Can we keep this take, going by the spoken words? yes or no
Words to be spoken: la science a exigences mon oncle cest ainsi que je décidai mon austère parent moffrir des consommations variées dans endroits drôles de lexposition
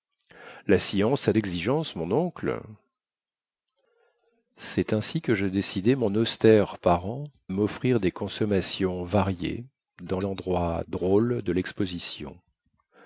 yes